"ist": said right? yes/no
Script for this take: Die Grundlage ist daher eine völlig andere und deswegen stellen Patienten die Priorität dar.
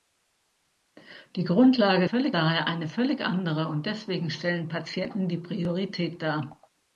no